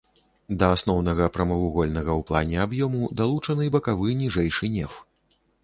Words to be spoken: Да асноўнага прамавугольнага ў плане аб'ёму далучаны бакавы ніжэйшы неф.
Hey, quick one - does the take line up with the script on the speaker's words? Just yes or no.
yes